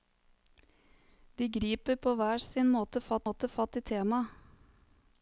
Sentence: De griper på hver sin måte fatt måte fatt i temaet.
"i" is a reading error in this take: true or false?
false